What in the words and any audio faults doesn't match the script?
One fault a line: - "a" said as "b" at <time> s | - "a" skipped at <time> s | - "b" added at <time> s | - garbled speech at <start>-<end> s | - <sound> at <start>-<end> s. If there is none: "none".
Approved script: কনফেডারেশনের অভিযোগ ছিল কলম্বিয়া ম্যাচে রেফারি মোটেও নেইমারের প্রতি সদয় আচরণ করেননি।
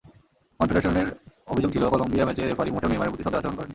none